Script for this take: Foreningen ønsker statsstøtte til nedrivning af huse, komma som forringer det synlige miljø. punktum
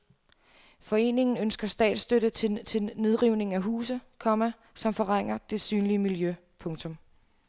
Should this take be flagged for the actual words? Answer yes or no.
yes